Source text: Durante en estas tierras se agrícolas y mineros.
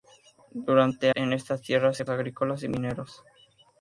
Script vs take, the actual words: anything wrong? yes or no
no